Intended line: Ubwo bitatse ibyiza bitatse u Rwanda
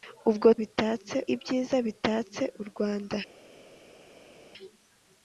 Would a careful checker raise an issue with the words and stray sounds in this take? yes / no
no